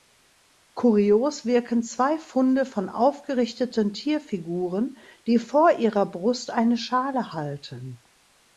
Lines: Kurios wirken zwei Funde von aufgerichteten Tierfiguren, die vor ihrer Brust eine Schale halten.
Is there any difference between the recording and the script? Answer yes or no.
no